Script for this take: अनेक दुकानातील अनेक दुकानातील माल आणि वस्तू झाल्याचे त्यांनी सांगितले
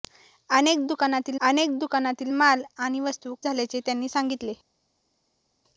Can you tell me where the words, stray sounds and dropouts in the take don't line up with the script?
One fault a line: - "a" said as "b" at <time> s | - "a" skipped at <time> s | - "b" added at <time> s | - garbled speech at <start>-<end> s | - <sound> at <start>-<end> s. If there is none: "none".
none